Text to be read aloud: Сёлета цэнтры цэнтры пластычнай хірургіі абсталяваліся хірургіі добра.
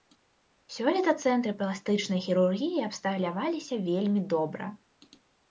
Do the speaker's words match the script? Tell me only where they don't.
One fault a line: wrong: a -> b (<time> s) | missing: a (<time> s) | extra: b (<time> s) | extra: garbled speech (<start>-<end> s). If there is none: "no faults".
missing: цэнтры (1.5 s)
wrong: хірургіі -> вельмі (3.9 s)